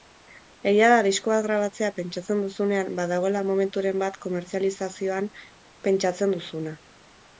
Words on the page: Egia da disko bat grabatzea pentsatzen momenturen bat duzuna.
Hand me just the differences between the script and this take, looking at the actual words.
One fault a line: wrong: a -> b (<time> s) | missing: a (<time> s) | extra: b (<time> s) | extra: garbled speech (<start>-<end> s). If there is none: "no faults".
extra: duzunean badagoela (2.5 s)
extra: komertzializazioan pentsatzen (4.3 s)